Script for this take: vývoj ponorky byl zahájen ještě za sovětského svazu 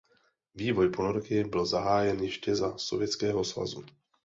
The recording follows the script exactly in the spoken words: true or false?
true